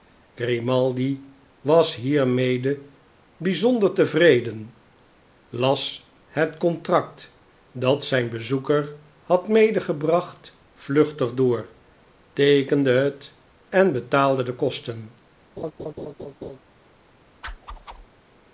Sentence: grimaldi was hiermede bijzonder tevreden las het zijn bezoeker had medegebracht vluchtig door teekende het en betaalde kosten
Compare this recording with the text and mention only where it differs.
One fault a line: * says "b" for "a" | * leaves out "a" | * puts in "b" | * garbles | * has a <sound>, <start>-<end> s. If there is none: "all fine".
* puts in "contract dat"
* puts in "de"
* has a laugh, 15.6-16.6 s
* has a whoosh, 17.4-18.1 s